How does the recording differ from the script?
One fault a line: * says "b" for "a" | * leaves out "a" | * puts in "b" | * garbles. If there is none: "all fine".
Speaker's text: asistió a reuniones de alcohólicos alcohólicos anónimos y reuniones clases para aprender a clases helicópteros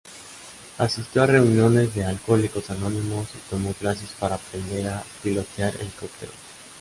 * leaves out "alcohólicos"
* says "tomó" for "reuniones"
* says "pilotear" for "clases"